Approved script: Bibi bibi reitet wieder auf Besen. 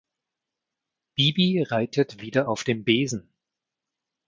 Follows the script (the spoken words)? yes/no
no